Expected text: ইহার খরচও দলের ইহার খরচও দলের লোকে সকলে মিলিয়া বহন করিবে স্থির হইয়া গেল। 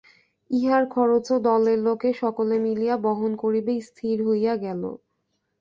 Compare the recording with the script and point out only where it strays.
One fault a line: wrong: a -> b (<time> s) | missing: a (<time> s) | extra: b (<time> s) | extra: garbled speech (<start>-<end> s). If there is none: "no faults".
missing: ইহার খরচও দলের (1.8 s)